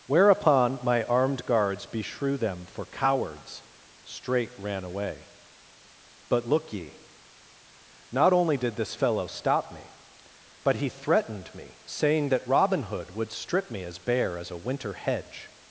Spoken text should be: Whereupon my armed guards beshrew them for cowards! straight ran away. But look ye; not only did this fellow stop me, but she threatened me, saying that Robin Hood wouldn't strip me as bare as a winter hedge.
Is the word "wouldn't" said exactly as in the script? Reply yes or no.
no